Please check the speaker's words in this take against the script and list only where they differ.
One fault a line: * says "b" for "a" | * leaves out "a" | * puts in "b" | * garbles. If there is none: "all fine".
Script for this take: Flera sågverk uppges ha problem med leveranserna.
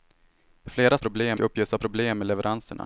* says "problem" for "sågverk"